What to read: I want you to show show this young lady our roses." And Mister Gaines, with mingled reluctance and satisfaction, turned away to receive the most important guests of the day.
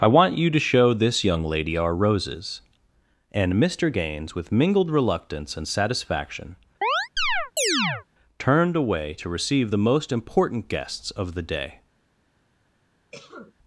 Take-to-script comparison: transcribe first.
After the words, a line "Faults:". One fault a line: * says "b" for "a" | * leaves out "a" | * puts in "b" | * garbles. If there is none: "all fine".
I want you to show this young lady our roses." And Mister Gaines, with mingled reluctance and satisfaction, turned away to receive the most important guests of the day.
Faults:
* leaves out "show"